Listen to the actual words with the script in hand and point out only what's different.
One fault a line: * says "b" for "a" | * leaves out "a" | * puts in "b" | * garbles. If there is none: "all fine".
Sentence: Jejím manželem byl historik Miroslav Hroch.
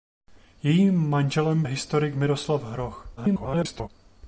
* leaves out "byl"
* garbles